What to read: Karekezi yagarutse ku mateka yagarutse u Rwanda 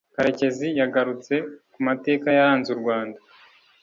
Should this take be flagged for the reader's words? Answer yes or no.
yes